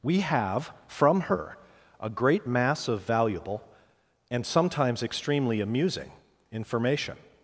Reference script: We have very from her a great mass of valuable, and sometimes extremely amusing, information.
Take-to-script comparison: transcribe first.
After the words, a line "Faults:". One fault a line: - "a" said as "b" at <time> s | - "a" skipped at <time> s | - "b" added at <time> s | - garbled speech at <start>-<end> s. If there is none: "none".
We have from her a great mass of valuable, and sometimes extremely amusing, information.
Faults:
- "very" skipped at 0.7 s